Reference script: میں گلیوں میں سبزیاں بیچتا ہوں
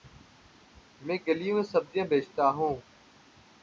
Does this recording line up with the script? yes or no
yes